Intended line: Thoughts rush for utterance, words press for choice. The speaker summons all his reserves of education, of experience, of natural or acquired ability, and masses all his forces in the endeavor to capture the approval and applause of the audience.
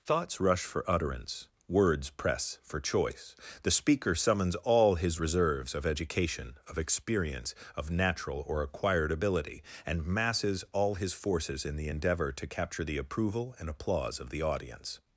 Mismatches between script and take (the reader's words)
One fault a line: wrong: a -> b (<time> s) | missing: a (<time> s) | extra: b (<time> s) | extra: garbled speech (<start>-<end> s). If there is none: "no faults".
no faults